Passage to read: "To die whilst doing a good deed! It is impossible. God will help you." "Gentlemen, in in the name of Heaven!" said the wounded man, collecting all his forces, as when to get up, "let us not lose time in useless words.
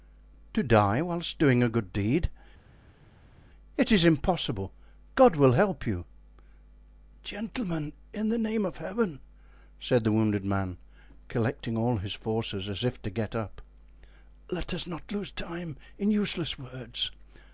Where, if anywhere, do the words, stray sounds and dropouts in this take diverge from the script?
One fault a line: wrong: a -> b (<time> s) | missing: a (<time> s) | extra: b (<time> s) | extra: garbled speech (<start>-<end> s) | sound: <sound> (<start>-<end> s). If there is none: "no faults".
missing: in (8.3 s)
wrong: when -> if (12.8 s)